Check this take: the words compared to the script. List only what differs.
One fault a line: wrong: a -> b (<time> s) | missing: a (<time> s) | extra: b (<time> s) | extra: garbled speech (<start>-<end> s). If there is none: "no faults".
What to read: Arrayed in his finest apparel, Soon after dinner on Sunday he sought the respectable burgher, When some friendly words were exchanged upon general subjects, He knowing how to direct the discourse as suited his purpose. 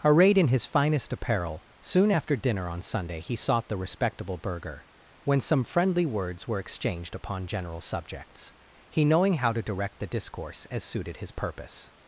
no faults